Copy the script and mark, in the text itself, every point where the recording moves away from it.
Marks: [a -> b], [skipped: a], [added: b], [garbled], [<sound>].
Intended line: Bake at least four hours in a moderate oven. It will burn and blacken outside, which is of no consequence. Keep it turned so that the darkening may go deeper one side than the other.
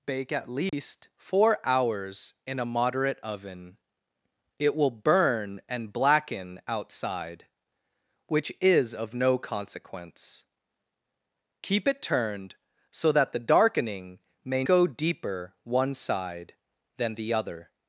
Bake at least [dropout] four hours in a moderate oven. It will burn and blacken outside, which is of no consequence. Keep it turned so that the darkening may go deeper one side than the other.